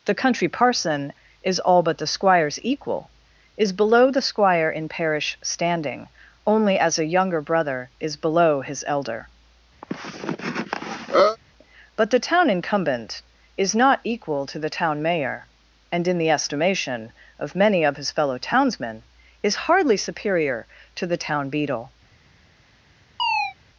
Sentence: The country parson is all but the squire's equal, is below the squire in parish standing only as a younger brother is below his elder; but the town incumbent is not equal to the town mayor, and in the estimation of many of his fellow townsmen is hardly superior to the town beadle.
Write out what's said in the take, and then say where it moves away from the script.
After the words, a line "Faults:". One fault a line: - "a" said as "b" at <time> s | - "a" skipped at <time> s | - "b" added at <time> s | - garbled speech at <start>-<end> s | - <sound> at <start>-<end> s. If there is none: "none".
The country parson is all but the squire's equal, is below the squire in parish standing only as a younger brother is below his elder; but the town incumbent is not equal to the town mayor, and in the estimation of many of his fellow townsmen is hardly superior to the town beadle.
Faults:
- cough at 9.8-11.4 s
- chirp at 23.2-23.5 s